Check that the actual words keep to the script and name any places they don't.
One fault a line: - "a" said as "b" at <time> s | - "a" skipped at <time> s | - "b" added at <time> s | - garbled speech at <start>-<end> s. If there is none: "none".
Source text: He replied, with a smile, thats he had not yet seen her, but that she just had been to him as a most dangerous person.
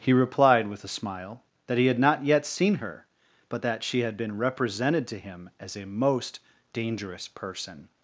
- "thats" said as "that" at 1.7 s
- "just" skipped at 4.0 s
- "represented" added at 4.4 s